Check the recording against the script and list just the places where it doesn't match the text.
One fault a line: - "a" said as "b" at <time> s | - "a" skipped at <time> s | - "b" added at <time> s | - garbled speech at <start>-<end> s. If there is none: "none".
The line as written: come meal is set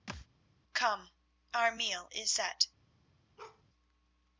- "our" added at 1.5 s